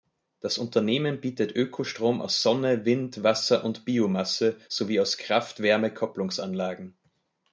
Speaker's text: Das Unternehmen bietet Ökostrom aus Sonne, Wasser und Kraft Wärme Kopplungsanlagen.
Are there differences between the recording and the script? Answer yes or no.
yes